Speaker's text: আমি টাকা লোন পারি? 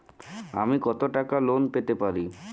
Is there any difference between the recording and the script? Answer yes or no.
yes